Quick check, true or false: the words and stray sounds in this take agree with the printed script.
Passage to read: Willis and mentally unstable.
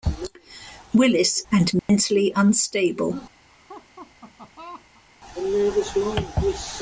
false